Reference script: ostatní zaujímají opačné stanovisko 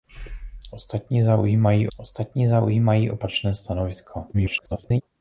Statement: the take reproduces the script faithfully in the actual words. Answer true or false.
false